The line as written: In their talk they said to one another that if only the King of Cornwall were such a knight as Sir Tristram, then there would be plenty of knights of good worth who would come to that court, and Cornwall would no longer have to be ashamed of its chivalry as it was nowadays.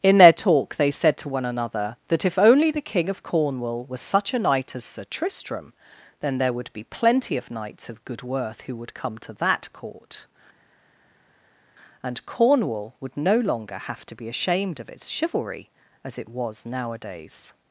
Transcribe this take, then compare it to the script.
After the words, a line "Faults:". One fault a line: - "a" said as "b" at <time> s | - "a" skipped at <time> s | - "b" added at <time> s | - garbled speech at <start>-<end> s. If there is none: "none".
In their talk they said to one another that if only the King of Cornwall was such a knight as Sir Tristram, then there would be plenty of knights of good worth who would come to that court, and Cornwall would no longer have to be ashamed of its chivalry as it was nowadays.
Faults:
- "were" said as "was" at 3.9 s